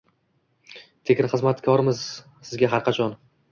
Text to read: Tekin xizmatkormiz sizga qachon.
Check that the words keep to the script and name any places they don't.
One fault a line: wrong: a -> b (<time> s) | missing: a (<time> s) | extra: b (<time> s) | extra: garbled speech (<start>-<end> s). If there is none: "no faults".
extra: har (2.8 s)